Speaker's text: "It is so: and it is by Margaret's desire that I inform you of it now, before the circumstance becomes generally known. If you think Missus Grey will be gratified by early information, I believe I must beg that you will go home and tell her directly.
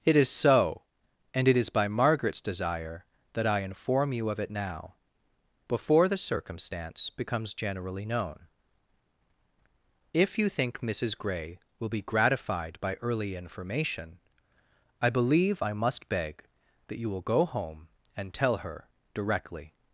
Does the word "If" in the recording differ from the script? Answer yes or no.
no